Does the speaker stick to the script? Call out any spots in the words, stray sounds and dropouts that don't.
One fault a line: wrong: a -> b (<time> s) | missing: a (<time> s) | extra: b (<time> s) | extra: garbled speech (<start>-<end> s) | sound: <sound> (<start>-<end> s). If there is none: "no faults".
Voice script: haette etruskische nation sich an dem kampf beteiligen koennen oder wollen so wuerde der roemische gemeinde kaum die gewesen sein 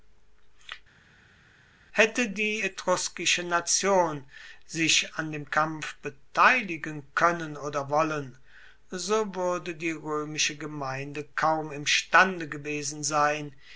extra: die (2.3 s)
wrong: der -> die (9.7 s)
wrong: die -> imstande (11.7 s)